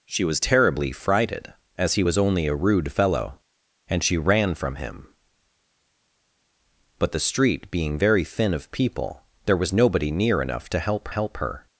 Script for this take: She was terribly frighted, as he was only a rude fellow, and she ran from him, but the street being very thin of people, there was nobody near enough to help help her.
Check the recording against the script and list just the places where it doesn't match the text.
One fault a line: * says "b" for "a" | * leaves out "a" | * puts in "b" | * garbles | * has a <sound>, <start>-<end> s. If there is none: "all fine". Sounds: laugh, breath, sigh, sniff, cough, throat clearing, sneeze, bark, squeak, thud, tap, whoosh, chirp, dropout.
all fine